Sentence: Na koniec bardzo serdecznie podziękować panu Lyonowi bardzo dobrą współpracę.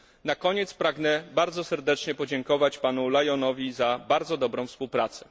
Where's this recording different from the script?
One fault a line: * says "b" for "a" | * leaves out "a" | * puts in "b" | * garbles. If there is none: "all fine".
* puts in "pragnę"
* puts in "za"